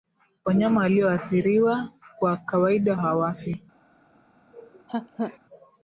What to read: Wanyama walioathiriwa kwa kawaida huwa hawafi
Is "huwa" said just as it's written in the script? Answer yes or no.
no